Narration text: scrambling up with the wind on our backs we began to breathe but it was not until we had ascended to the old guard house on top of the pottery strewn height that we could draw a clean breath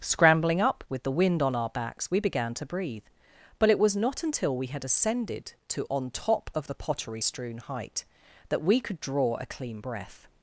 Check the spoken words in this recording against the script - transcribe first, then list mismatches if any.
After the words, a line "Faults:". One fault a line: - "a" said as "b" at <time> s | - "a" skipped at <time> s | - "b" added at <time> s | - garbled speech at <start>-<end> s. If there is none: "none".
scrambling up with the wind on our backs we began to breathe but it was not until we had ascended to on top of the pottery strewn height that we could draw a clean breath
Faults:
- "the old guard house" skipped at 5.8 s